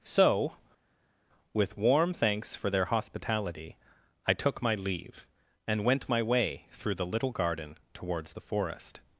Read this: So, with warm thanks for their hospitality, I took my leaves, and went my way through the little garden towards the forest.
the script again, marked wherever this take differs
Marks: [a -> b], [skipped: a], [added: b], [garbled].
So, with warm thanks for their hospitality, I took my [leaves, -> leave] and went my way through the little garden towards the forest.